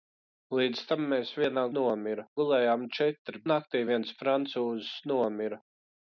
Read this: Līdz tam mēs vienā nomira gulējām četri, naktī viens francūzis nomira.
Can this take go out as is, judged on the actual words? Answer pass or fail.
pass